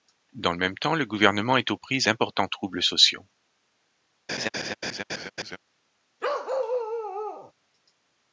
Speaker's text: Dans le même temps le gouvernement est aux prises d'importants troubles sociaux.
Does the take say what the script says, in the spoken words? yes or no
yes